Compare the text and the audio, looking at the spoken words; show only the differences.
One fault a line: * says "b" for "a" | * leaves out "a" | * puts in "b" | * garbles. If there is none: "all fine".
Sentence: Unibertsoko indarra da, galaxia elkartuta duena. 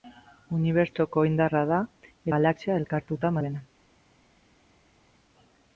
all fine